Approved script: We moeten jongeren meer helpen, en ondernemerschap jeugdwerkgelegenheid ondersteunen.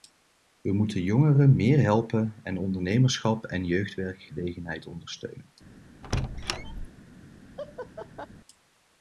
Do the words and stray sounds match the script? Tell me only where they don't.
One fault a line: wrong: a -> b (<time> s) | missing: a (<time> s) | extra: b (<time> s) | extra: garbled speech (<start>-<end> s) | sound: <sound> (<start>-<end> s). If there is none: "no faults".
extra: en (3.4 s)
sound: squeak (6.0-6.9 s)
sound: laugh (7.6-8.3 s)